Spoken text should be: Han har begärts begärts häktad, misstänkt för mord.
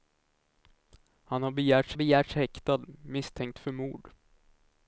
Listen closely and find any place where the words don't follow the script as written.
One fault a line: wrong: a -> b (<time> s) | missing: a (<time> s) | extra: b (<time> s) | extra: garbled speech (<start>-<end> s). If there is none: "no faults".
no faults